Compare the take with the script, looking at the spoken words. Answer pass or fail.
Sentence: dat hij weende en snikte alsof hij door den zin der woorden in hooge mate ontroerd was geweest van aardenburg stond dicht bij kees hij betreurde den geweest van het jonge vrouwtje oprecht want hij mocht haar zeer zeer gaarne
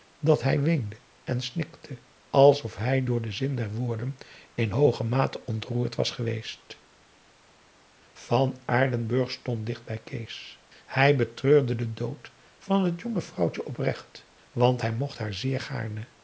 fail